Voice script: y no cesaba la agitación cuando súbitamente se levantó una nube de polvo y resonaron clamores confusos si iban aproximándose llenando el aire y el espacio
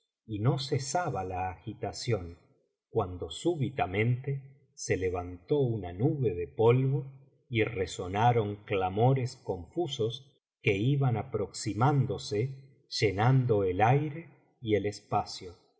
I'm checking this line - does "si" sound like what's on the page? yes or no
no